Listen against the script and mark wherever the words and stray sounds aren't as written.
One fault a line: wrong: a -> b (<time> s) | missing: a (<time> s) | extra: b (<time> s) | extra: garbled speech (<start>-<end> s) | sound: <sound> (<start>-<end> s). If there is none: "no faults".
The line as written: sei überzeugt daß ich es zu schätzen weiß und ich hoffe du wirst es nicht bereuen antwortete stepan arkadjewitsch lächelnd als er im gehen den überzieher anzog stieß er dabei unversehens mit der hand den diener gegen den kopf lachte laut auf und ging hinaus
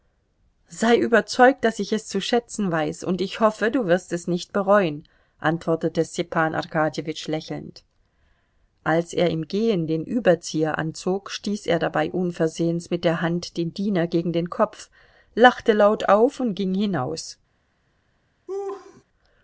sound: laugh (18.5-19.0 s)